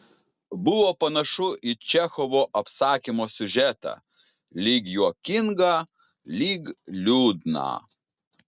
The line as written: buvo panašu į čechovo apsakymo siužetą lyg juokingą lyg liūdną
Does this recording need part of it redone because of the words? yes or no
no